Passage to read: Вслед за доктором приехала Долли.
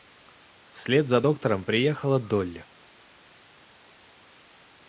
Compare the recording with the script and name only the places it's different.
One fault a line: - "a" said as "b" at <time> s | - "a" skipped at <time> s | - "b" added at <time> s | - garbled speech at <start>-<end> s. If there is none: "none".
none